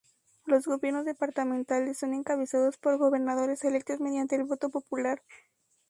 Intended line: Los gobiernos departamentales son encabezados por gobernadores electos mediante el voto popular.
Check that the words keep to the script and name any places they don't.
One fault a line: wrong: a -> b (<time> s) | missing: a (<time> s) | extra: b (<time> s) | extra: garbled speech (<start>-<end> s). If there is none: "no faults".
no faults